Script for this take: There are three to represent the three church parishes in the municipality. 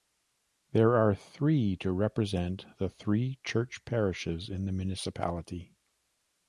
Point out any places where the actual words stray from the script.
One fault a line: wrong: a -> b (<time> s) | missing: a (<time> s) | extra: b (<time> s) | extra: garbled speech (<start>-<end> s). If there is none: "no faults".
no faults